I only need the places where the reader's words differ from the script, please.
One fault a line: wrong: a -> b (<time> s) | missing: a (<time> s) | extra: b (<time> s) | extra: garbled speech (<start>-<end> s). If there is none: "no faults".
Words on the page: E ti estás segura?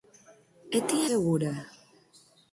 missing: estás (1.0 s)